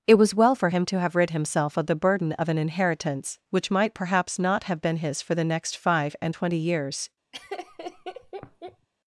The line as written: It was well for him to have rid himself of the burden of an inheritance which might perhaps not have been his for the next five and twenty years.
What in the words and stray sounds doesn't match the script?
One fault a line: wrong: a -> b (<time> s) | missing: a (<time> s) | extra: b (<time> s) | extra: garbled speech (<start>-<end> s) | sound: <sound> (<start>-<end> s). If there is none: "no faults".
sound: laugh (7.3-8.9 s)